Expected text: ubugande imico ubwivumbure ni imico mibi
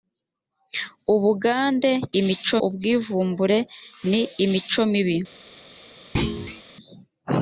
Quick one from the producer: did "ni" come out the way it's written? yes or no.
yes